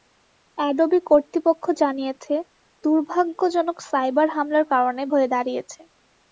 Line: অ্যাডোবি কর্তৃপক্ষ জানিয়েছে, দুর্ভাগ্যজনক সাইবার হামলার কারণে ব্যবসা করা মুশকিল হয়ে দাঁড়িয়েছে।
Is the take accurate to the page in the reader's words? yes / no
no